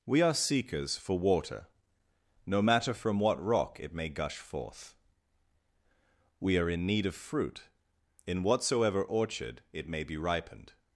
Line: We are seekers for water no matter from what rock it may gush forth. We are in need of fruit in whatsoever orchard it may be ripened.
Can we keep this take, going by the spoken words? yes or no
yes